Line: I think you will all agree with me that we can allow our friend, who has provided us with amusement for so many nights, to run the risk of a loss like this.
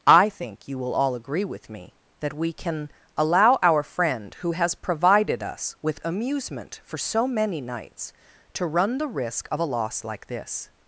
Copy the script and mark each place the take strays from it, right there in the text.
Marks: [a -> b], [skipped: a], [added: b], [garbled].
I think you will all agree with me that we can allow our friend, who has provided us with amusement for so many nights, to run the risk of a loss like this.